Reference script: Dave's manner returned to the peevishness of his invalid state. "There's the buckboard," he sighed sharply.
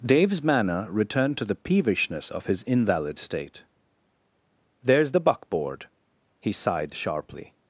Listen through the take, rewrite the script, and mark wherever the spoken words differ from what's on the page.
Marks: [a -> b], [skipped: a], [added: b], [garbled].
Dave's manner returned to the peevishness of his invalid state. "There's the buckboard," he sighed sharply.